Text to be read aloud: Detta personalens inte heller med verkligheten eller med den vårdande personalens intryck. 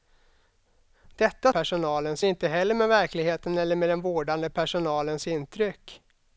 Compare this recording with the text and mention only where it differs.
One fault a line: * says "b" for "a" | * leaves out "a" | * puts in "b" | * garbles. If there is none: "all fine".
all fine